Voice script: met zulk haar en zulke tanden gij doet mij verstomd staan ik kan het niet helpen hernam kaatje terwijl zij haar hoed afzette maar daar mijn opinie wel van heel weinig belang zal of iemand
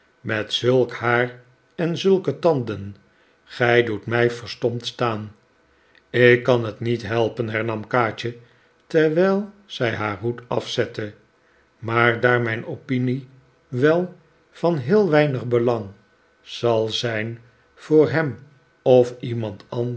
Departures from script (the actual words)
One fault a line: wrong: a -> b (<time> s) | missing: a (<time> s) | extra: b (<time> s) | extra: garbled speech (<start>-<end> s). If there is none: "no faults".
extra: zijn voor hem (16.9 s)